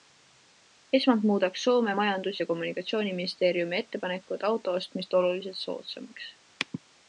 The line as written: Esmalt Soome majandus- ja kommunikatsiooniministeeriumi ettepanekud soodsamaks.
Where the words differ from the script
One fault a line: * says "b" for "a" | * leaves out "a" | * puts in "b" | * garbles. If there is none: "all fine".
* puts in "muudaks"
* puts in "auto ostmist oluliselt"